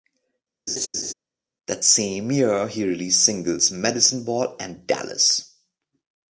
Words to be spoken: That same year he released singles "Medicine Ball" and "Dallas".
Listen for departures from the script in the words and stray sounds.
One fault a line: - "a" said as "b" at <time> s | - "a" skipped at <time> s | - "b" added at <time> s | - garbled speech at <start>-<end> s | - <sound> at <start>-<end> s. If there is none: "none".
- laugh at 0.7-1.1 s